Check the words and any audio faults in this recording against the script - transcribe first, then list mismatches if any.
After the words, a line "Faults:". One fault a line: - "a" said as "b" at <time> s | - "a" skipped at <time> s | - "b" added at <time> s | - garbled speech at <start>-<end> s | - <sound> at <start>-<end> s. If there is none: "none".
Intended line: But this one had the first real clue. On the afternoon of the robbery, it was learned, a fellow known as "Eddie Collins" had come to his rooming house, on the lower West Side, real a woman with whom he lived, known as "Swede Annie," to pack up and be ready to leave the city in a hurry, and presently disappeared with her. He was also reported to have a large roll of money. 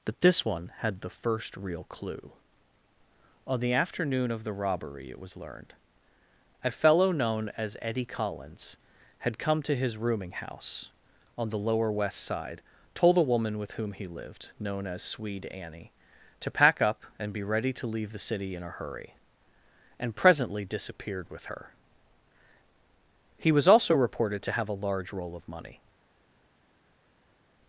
But this one had the first real clue. On the afternoon of the robbery, it was learned, a fellow known as "Eddie Collins" had come to his rooming house, on the lower West Side, told a woman with whom he lived, known as "Swede Annie," to pack up and be ready to leave the city in a hurry, and presently disappeared with her. He was also reported to have a large roll of money.
Faults:
- "real" said as "told" at 12.9 s